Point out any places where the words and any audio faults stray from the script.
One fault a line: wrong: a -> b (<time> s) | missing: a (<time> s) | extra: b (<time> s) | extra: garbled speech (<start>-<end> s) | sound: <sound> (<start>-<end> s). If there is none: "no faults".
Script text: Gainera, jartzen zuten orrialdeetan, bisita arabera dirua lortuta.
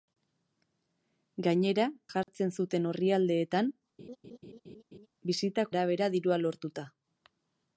sound: dropout (2.2-2.3 s)
sound: laugh (4.0-5.1 s)